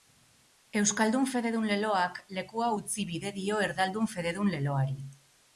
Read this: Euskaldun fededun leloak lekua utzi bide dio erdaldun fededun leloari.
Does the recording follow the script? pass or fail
pass